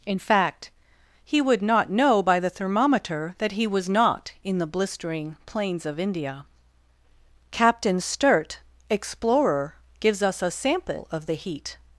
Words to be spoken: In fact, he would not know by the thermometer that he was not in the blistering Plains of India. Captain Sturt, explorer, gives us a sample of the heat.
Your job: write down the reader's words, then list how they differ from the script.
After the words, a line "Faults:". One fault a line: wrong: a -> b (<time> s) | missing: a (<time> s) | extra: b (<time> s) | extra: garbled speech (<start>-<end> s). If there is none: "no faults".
In fact, he would not know by the thermometer that he was not in the blistering Plains of India. Captain Sturt, explorer, gives us a sample of the heat.
Faults:
no faults